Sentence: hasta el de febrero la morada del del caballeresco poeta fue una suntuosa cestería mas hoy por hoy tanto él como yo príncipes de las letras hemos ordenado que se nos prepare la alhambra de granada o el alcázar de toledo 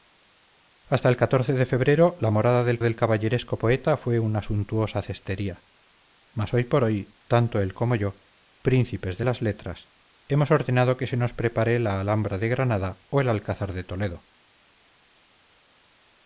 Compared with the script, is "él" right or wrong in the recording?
right